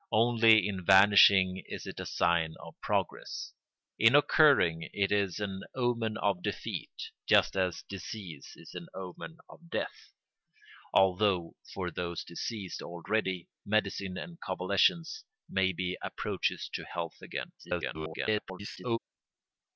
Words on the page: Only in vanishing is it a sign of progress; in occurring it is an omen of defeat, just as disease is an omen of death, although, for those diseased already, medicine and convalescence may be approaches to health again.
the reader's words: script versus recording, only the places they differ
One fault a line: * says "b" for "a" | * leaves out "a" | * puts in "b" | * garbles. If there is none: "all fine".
* garbles